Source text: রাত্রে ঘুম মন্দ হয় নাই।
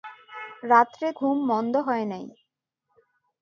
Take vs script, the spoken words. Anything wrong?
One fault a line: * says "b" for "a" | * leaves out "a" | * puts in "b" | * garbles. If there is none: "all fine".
all fine